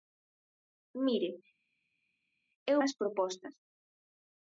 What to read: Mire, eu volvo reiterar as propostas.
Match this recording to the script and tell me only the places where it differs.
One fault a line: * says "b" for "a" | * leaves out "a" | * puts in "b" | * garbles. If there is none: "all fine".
* leaves out "volvo reiterar"